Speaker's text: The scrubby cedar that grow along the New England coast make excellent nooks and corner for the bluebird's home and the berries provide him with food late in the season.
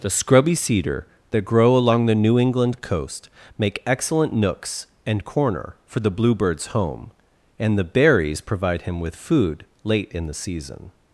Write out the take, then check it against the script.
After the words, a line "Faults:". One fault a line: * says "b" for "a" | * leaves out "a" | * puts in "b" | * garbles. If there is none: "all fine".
The scrubby cedar that grow along the New England coast make excellent nooks and corner for the bluebird's home and the berries provide him with food late in the season.
Faults:
all fine